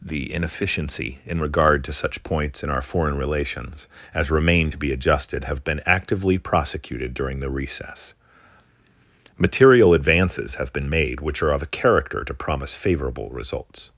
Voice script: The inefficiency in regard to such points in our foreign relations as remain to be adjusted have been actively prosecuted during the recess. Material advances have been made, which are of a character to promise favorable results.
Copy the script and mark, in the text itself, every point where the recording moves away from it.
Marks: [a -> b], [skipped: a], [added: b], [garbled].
The inefficiency in regard to such points in our foreign relations as remain to be adjusted have been actively prosecuted during the recess. Material advances have been made, which are of a character to promise favorable results.